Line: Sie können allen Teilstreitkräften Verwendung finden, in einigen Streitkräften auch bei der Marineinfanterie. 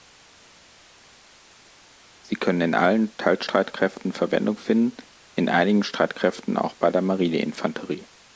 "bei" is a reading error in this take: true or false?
false